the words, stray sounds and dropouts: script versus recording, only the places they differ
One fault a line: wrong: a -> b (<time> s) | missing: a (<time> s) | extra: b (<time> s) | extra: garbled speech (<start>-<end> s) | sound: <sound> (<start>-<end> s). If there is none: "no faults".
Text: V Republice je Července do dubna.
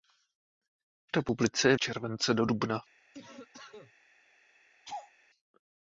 sound: cough (3.1-3.9 s)
sound: laugh (4.8-5.1 s)